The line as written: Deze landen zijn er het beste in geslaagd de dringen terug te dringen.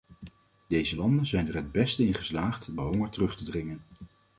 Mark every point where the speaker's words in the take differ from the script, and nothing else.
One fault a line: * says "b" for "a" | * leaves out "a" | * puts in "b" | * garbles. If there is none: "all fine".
* says "honger" for "dringen"